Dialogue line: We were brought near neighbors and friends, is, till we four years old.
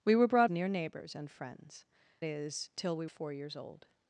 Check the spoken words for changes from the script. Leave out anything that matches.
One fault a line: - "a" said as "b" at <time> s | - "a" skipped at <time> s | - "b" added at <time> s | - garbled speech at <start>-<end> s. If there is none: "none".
none